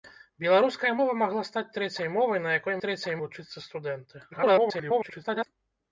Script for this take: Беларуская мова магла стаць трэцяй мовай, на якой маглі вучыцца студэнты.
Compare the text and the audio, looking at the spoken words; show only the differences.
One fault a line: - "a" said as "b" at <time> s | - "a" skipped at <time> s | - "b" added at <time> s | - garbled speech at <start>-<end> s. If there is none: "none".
- "маглі" said as "трэцяй" at 2.9 s
- garbled speech at 4.3-5.5 s